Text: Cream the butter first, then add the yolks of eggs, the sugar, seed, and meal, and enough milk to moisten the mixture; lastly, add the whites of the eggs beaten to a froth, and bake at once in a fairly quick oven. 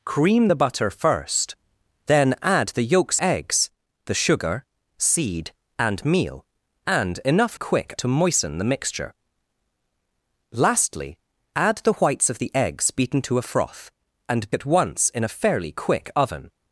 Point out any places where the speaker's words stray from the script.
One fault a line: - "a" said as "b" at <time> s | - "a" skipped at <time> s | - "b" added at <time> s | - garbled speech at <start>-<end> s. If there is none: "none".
- "of" skipped at 3.2 s
- "milk" said as "quick" at 7.5 s
- "bake" skipped at 14.5 s